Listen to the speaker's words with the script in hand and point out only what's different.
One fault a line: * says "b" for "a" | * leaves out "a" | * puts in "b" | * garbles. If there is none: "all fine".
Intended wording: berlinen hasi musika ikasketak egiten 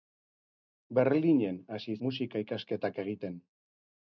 all fine